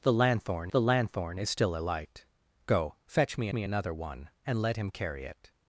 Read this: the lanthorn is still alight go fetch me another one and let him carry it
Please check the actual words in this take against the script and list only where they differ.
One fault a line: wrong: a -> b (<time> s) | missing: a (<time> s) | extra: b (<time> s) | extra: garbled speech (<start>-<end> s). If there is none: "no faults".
extra: the lanthorn (0.7 s)
extra: me (3.5 s)